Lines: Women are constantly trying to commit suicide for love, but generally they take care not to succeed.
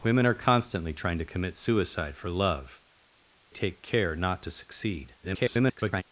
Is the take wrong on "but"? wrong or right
wrong